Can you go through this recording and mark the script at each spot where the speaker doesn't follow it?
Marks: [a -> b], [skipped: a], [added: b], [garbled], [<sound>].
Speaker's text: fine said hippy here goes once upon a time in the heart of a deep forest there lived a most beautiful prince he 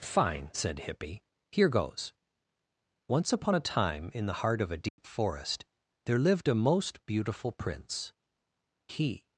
fine said hippy here goes once upon a time in the heart of a deep [dropout] forest there lived a most beautiful prince he